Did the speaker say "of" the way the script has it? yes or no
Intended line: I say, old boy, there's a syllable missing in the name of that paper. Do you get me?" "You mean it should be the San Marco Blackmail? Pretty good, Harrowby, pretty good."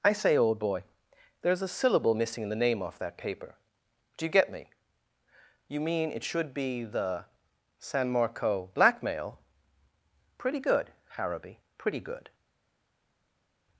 no